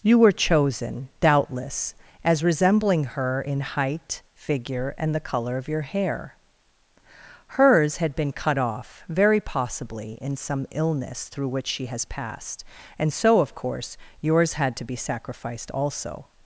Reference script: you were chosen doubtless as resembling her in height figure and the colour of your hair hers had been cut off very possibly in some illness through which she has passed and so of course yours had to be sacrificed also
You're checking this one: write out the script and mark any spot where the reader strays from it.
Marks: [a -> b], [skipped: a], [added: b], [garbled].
you were chosen doubtless as resembling her in height figure and the colour of your hair hers had been cut off very possibly in some illness through which she has passed and so of course yours had to be sacrificed also